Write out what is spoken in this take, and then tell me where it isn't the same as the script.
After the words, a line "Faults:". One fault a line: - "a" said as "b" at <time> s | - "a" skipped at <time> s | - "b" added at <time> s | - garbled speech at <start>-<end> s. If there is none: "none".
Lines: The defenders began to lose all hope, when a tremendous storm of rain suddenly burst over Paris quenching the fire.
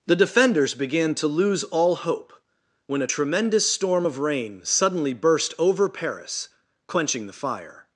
The defenders began to lose all hope, when a tremendous storm of rain suddenly burst over Paris quenching the fire.
Faults:
none